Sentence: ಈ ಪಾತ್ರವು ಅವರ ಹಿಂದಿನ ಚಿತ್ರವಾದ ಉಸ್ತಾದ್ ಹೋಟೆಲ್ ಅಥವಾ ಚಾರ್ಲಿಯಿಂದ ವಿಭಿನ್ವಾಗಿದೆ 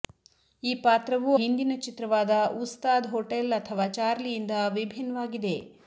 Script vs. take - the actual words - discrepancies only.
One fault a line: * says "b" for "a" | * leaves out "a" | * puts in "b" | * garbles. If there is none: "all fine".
* leaves out "ಅವರ"